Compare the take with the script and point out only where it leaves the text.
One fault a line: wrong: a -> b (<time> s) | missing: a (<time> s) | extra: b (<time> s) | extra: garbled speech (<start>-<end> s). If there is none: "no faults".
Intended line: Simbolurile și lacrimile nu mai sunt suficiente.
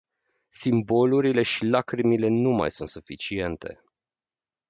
no faults